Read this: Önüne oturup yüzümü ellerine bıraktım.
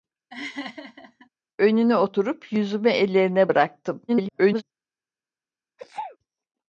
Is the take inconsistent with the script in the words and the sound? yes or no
yes